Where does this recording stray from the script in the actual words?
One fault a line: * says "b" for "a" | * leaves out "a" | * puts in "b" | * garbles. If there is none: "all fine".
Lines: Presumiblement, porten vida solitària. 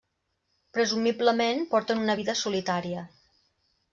* puts in "una"